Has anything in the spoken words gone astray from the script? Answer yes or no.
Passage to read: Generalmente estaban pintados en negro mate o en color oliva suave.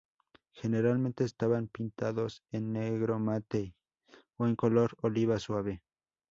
no